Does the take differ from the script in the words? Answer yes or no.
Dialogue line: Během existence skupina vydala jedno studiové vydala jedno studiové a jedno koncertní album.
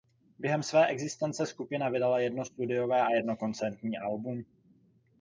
yes